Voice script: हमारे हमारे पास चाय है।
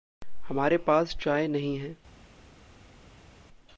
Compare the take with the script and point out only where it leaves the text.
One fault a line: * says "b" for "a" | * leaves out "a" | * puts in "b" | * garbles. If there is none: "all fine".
* leaves out "हमारे"
* puts in "नहीं"